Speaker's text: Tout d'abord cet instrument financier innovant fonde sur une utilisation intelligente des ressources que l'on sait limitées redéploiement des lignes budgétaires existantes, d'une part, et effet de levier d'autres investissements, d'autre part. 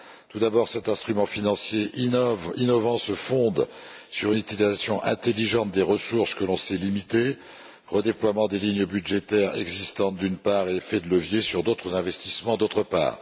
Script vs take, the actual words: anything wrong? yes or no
yes